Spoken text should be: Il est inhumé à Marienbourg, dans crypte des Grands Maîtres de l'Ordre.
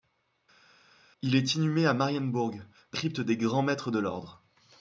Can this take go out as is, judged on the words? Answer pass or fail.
pass